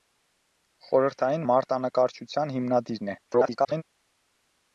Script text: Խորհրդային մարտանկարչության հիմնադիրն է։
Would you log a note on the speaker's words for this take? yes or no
yes